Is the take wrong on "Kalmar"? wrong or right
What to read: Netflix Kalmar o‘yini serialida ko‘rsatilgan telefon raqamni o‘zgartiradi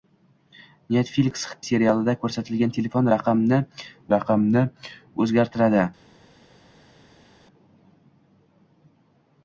wrong